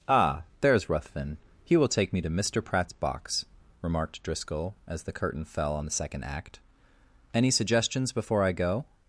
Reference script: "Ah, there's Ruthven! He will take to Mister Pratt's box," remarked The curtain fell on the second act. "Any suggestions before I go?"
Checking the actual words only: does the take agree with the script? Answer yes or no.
no